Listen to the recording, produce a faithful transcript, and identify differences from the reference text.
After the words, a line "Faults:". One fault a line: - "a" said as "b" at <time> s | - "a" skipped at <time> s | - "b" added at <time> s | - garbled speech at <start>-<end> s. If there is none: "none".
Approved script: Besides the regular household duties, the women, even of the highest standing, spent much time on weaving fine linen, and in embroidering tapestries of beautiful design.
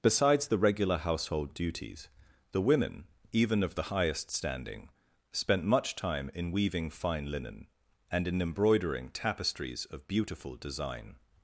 Besides the regular household duties, the women, even of the highest standing, spent much time in weaving fine linen, and in embroidering tapestries of beautiful design.
Faults:
- "on" said as "in" at 6.3 s